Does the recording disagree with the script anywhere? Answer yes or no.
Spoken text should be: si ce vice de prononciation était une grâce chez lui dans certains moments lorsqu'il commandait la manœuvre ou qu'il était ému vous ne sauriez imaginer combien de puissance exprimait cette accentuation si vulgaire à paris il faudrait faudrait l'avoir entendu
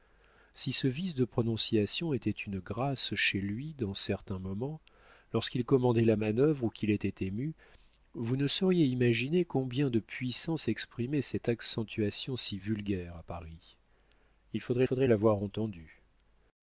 no